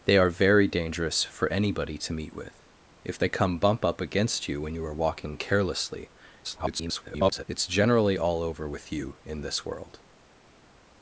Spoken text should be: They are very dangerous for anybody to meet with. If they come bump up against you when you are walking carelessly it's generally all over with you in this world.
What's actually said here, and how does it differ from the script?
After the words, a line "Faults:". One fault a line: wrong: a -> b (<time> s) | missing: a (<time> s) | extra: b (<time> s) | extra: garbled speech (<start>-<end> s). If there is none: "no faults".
They are very dangerous for anybody to meet with. If they come bump up against you when you are walking carelessly [garbled] it's generally all over with you in this world.
Faults:
extra: garbled speech (6.4-7.4 s)